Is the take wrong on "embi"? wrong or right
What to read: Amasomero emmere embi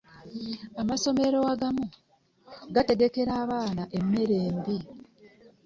right